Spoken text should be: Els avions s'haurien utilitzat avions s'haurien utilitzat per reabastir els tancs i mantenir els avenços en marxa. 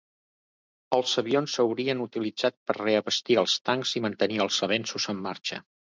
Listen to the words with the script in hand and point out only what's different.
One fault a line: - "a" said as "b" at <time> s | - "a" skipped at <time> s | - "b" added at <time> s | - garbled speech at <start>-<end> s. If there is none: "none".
- "avions s'haurien utilitzat" skipped at 2.6 s